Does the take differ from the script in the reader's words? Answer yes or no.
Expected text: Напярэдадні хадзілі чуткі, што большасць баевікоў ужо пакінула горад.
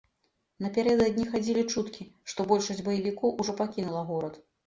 no